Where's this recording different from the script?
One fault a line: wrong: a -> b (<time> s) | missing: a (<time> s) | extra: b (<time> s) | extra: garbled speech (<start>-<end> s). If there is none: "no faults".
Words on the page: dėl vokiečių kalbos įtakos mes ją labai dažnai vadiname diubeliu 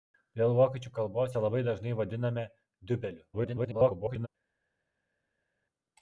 missing: įtakos mes (1.4 s)
extra: garbled speech (3.3-4.3 s)